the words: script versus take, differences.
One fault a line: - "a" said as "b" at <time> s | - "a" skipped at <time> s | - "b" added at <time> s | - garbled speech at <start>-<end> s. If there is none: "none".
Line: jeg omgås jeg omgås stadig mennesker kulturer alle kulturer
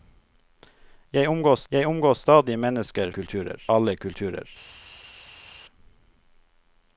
none